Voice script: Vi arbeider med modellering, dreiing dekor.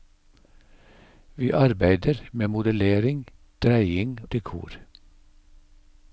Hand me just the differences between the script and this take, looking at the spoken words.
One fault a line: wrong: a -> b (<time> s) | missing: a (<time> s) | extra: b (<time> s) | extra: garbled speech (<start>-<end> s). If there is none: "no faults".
no faults